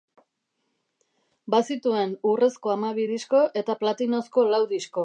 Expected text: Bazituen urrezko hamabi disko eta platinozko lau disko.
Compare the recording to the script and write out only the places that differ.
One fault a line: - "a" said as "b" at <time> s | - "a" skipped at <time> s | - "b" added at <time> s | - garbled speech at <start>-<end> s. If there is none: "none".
none